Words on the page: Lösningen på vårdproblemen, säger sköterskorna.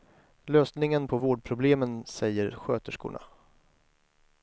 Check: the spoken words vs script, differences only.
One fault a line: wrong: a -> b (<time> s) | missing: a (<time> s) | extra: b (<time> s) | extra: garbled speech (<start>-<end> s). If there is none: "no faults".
no faults